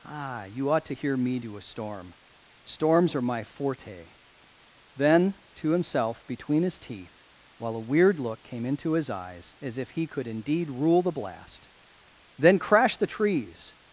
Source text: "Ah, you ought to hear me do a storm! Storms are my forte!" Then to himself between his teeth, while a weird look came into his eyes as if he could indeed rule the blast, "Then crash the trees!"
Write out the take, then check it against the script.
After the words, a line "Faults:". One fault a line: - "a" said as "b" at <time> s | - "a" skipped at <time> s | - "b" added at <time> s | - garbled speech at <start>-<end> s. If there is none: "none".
"Ah, you ought to hear me do a storm! Storms are my forte!" Then to himself between his teeth, while a weird look came into his eyes as if he could indeed rule the blast, "Then crash the trees!"
Faults:
none